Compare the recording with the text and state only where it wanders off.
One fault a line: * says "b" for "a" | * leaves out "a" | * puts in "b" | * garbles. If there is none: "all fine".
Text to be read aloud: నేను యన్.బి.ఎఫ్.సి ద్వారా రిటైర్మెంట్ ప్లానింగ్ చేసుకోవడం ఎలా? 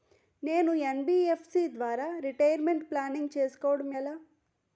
all fine